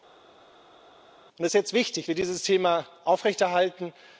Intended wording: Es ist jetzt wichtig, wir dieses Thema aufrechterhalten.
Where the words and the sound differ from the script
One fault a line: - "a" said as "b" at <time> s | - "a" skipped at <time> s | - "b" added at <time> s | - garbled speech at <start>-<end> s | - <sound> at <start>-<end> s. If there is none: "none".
none